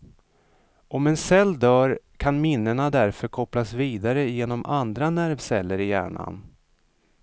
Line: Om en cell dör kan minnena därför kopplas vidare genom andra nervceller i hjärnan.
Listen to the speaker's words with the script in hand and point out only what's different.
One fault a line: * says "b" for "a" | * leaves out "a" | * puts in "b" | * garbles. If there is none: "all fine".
all fine